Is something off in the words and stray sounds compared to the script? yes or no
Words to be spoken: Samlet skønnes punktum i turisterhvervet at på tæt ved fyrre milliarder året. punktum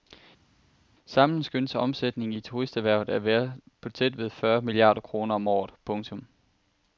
yes